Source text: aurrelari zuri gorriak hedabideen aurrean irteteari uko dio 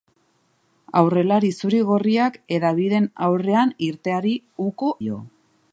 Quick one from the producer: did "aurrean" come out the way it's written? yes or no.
yes